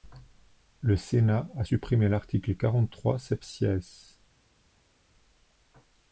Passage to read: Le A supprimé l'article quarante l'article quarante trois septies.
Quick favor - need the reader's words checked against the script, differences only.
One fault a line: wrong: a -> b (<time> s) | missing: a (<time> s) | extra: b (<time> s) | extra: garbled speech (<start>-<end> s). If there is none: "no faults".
extra: Sénat (1.0 s)
missing: l'article quarante (2.9 s)